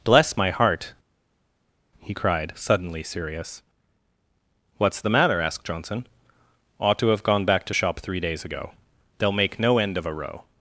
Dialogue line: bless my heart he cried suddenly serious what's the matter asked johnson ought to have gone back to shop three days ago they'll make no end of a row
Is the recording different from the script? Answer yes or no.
no